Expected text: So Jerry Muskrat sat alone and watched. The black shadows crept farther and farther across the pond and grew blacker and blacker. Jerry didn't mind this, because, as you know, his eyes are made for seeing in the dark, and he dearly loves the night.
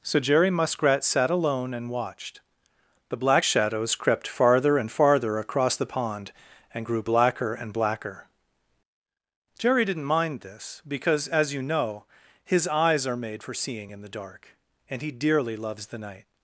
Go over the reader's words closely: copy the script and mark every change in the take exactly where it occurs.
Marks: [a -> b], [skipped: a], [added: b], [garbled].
So Jerry Muskrat sat alone and watched. The black shadows crept farther and farther across the pond and grew blacker and blacker. Jerry didn't mind this, because, as you know, his eyes are made for seeing in the dark, and he dearly loves the night.